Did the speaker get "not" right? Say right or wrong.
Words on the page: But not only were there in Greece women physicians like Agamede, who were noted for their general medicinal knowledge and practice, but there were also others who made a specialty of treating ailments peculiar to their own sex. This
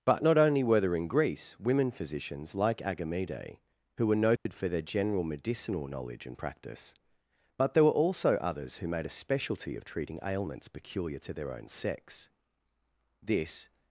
right